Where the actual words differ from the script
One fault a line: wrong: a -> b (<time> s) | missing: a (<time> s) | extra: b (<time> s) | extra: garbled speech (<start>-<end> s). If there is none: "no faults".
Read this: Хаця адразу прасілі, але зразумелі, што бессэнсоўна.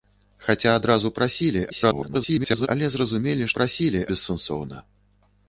extra: garbled speech (1.7-2.7 s)
wrong: што -> прасілі (3.6 s)